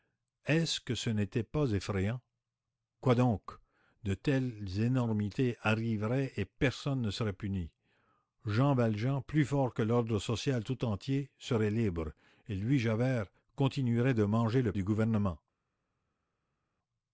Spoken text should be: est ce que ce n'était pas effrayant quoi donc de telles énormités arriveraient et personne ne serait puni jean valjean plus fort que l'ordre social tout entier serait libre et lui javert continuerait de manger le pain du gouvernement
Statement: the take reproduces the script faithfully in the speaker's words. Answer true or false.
false